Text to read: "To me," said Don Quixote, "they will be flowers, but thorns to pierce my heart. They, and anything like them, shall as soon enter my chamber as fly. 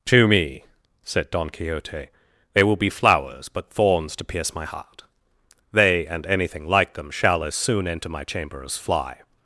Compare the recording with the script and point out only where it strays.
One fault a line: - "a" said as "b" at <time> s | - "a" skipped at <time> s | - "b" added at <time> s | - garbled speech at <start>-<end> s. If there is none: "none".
none